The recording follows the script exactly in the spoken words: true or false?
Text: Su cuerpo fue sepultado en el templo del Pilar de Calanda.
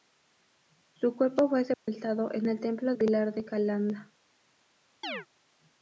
false